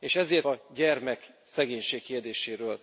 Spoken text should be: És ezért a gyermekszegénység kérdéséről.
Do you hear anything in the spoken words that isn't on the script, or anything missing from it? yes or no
no